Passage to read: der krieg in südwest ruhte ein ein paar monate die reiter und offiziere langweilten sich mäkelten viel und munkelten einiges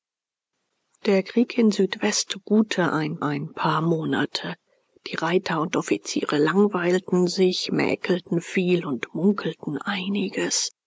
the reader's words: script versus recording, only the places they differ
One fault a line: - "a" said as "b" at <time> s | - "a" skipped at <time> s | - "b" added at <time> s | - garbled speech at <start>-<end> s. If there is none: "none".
none